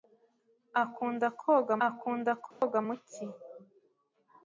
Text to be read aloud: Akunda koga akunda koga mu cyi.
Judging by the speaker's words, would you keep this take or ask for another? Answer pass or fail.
pass